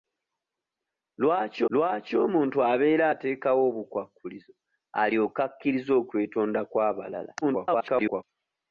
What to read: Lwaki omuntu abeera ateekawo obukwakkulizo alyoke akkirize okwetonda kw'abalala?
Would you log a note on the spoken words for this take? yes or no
yes